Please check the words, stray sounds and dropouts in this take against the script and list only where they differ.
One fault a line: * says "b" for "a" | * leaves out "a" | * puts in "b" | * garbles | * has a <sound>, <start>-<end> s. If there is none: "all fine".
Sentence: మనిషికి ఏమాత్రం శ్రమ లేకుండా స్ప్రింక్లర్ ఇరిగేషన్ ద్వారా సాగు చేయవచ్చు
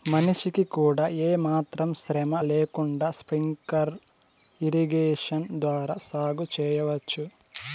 * puts in "కూడా"